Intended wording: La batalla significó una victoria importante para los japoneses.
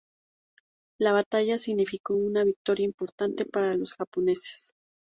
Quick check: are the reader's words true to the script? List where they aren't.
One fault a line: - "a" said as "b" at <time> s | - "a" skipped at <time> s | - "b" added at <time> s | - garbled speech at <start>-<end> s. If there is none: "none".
none